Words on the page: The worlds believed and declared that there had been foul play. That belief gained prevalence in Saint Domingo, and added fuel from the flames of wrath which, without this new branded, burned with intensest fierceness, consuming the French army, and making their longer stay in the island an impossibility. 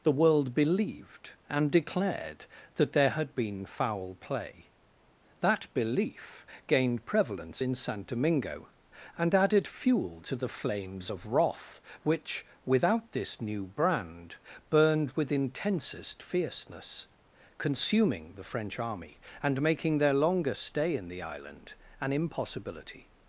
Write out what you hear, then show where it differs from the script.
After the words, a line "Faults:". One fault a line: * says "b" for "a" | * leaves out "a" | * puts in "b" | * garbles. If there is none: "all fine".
The world believed and declared that there had been foul play. That belief gained prevalence in Saint Domingo, and added fuel to the flames of wrath which, without this new brand, burned with intensest fierceness, consuming the French army, and making their longer stay in the island an impossibility.
Faults:
* says "world" for "worlds"
* says "to" for "from"
* says "brand" for "branded"